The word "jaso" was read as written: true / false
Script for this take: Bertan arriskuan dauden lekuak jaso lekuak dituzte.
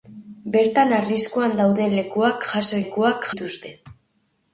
true